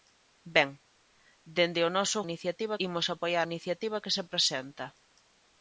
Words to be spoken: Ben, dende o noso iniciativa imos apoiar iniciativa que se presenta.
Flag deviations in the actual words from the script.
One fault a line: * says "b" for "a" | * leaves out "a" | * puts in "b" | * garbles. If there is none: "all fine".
all fine